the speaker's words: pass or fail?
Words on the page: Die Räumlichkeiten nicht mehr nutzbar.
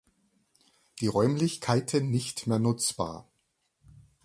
pass